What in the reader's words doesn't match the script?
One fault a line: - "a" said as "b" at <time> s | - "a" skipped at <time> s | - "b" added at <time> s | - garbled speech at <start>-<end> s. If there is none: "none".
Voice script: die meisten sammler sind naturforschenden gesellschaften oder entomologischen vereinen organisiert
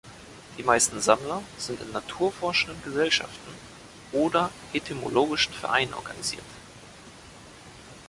- "in" added at 1.8 s